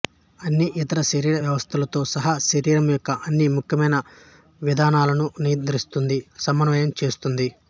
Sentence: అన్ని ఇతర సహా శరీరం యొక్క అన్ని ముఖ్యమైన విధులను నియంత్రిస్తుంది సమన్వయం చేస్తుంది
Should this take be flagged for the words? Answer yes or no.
yes